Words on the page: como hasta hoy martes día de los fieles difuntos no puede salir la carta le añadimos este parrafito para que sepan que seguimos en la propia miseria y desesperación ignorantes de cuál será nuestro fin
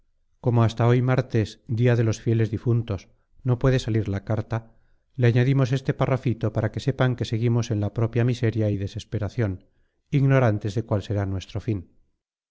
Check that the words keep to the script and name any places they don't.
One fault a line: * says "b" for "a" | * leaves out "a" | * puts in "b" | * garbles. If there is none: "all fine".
all fine